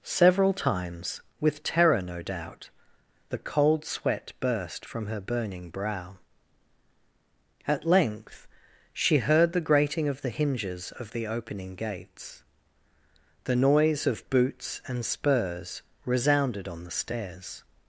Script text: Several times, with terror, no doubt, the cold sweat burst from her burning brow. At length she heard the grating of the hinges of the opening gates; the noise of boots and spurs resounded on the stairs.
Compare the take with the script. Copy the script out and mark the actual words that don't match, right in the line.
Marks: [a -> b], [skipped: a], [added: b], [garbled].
Several times, with terror, no doubt, the cold sweat burst from her burning brow. At length she heard the grating of the hinges of the opening gates; the noise of boots and spurs resounded on the stairs.